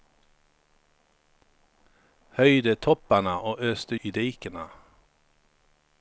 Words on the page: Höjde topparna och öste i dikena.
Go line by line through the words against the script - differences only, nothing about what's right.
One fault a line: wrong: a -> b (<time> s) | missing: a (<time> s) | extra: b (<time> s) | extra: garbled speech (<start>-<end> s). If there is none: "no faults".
no faults